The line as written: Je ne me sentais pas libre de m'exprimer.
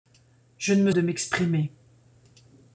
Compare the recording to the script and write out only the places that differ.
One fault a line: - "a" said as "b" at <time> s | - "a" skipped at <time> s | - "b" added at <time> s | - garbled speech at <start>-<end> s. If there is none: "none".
- "sentais pas libre" skipped at 0.9 s